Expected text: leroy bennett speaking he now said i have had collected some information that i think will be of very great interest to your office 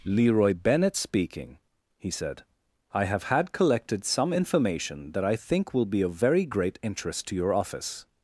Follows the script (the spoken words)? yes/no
no